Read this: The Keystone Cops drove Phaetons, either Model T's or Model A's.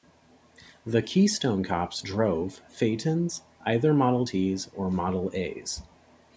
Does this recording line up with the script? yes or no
yes